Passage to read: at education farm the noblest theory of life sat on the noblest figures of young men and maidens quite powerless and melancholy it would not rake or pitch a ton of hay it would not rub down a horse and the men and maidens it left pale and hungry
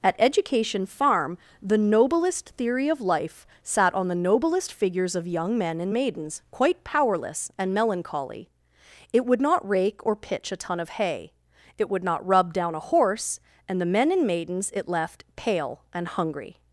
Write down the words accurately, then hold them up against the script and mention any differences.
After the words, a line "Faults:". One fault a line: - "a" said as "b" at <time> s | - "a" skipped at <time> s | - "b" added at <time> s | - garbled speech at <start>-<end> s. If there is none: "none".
at education farm the noblest theory of life sat on the noblest figures of young men and maidens quite powerless and melancholy it would not rake or pitch a ton of hay it would not rub down a horse and the men and maidens it left pale and hungry
Faults:
none